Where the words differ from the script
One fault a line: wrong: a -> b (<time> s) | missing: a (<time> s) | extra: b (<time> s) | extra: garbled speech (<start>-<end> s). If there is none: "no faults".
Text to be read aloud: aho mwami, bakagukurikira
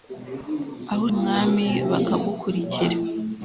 no faults